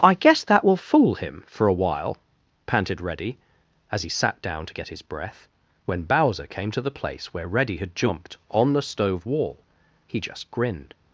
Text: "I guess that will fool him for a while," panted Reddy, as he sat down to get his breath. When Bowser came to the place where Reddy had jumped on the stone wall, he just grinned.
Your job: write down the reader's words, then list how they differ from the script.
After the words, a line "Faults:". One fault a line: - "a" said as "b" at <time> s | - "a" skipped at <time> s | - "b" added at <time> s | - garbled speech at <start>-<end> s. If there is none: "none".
"I guess that will fool him for a while," panted Reddy, as he sat down to get his breath. When Bowser came to the place where Reddy had jumped on the stove wall, he just grinned.
Faults:
- "stone" said as "stove" at 8.8 s